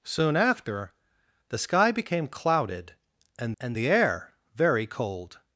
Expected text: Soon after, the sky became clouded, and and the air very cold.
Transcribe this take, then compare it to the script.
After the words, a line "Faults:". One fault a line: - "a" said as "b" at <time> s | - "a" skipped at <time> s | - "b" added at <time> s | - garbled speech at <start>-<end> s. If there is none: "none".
Soon after, the sky became clouded, and and the air very cold.
Faults:
none